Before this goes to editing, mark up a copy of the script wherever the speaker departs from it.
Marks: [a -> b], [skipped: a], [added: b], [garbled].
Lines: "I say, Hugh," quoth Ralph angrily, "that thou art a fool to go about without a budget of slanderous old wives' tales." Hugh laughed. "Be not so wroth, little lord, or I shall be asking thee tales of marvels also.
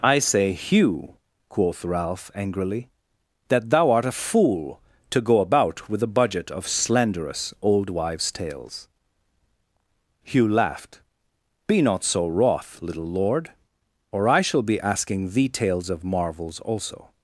"I say, Hugh," quoth Ralph angrily, "that thou art a fool to go about [without -> with] a budget of slanderous old wives' tales." Hugh laughed. "Be not so wroth, little lord, or I shall be asking thee tales of marvels also.